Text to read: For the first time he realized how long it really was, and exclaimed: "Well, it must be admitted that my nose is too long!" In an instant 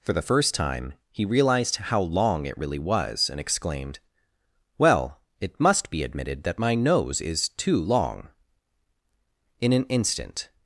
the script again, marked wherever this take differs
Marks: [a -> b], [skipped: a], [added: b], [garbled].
For the first time he realized how long it really was, and exclaimed: "Well, it must be admitted that my nose is too long!" In an instant